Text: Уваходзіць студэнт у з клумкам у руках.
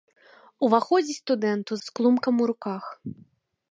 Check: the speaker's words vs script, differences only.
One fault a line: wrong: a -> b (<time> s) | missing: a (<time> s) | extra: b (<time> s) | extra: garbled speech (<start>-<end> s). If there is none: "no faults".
no faults